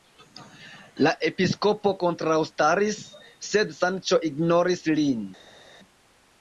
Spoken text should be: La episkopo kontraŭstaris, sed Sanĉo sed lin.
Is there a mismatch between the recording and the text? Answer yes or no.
yes